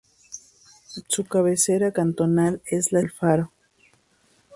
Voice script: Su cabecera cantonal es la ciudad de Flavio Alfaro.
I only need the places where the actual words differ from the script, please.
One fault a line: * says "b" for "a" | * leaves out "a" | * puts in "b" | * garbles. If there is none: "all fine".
* leaves out "ciudad de Flavio"